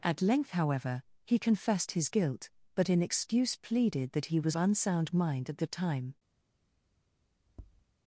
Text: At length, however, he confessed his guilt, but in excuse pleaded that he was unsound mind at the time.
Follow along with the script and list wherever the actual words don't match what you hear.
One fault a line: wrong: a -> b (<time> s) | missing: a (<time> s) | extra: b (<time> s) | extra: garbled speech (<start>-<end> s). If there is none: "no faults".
no faults